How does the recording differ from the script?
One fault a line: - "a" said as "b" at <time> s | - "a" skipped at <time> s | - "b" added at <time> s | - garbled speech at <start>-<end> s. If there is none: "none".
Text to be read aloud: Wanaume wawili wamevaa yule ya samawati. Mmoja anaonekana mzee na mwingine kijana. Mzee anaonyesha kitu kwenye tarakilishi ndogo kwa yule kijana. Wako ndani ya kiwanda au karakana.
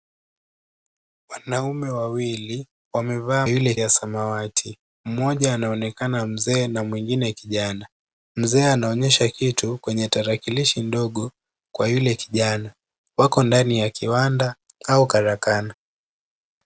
none